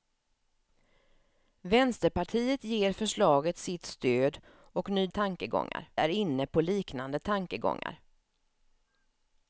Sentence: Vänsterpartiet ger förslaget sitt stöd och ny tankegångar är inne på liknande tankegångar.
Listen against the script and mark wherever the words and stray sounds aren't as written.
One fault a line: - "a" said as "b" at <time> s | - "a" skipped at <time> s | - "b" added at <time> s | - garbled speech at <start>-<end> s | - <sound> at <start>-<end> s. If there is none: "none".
none